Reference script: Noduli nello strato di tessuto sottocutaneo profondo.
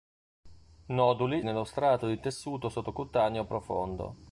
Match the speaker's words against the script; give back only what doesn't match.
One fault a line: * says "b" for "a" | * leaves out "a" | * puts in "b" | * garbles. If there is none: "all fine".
all fine